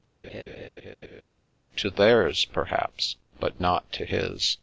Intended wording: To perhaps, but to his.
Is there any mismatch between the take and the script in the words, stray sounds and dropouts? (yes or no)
yes